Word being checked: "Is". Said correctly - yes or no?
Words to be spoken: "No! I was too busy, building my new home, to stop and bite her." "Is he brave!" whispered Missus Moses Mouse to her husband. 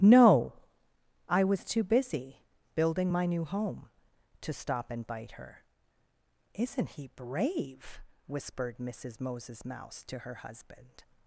no